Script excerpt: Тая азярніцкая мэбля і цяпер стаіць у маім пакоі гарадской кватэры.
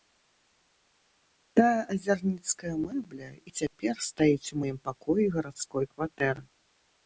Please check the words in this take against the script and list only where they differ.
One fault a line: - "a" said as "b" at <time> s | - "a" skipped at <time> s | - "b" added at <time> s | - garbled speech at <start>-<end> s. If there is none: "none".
none